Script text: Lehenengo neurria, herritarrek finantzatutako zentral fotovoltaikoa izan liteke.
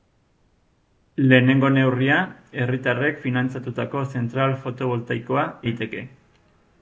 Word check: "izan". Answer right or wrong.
wrong